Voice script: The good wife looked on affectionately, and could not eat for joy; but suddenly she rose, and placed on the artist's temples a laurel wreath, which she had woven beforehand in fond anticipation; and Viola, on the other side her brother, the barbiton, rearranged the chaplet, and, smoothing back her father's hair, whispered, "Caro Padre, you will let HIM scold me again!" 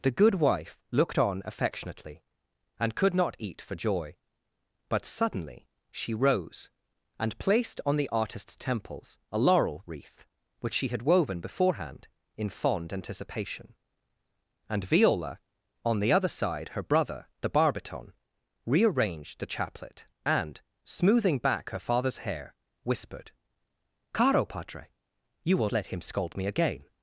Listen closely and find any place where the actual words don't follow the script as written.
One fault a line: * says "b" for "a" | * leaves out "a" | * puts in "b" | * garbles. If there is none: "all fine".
all fine